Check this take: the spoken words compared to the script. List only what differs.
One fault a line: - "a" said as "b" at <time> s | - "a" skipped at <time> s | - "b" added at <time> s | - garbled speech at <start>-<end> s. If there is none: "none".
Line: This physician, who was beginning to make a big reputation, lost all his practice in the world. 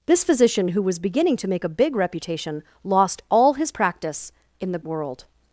none